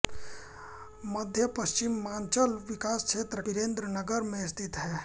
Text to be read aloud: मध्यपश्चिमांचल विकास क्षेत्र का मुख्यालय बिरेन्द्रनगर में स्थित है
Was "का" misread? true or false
true